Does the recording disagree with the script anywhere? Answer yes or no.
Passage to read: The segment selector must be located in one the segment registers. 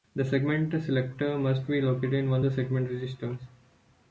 no